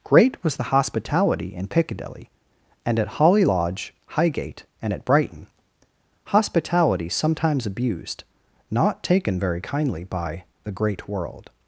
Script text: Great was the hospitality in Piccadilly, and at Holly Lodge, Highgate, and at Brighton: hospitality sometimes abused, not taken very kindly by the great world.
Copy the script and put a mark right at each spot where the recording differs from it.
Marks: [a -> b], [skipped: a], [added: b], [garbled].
Great was the hospitality in Piccadilly, and at Holly Lodge, Highgate, and at Brighton: hospitality sometimes abused, not taken very kindly by the great world.